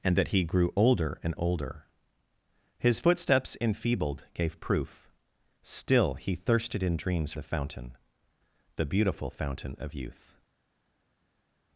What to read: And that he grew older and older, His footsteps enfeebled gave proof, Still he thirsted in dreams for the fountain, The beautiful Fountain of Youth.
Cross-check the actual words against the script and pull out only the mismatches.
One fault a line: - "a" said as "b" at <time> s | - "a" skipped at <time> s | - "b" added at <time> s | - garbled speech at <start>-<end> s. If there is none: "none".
- "for" skipped at 7.3 s